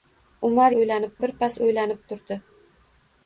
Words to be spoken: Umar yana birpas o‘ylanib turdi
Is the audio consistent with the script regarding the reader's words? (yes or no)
no